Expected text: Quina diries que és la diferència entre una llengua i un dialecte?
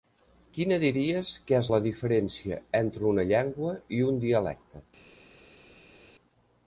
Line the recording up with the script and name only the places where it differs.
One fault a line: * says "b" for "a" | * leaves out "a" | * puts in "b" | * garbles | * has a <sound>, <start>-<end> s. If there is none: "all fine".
all fine